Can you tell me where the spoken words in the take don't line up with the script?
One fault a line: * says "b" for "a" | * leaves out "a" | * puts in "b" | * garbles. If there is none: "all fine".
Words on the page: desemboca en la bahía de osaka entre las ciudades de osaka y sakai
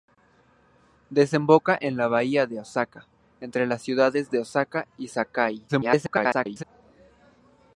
* garbles